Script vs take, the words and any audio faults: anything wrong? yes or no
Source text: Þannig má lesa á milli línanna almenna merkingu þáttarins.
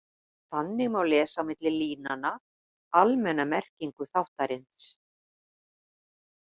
no